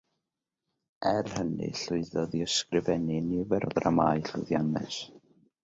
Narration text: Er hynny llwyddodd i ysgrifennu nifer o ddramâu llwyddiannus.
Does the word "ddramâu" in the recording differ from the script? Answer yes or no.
no